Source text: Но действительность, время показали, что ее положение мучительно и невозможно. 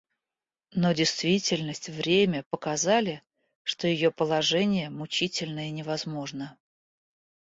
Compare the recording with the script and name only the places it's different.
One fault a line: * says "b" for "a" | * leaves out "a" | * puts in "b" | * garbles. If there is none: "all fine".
all fine